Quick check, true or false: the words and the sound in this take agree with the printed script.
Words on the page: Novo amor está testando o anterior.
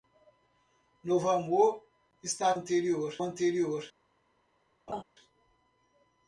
false